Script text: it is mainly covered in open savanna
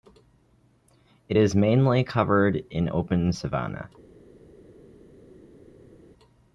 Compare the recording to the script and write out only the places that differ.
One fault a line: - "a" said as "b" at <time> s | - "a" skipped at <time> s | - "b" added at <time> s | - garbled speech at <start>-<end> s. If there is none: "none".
none